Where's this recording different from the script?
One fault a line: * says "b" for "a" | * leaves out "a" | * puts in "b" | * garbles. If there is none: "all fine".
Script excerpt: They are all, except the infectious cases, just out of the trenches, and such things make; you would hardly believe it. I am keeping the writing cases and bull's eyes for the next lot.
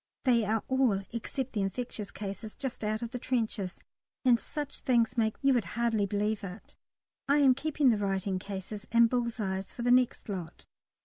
all fine